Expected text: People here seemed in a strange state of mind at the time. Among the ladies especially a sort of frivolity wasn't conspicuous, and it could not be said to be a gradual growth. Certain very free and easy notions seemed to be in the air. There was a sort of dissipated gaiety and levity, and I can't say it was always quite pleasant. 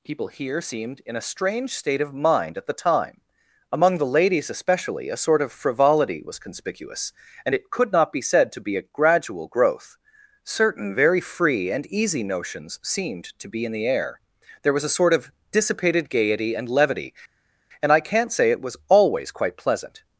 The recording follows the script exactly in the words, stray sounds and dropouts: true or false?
false